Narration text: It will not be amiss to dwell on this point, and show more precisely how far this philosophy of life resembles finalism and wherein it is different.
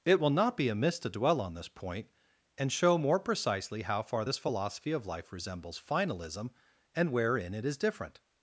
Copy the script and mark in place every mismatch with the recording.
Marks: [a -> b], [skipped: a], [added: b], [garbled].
It will not be amiss to dwell on this point, and show more precisely how far this philosophy of life resembles finalism and wherein it is different.